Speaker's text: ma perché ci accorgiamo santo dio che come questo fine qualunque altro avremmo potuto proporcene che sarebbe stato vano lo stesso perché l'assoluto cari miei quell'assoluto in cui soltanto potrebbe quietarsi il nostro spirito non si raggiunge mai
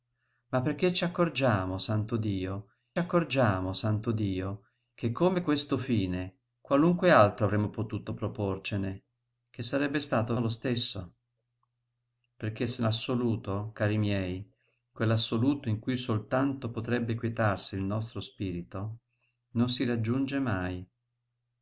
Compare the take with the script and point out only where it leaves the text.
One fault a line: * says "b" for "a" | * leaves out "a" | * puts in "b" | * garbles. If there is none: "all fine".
* puts in "accorgiamo santo dio"
* leaves out "vano"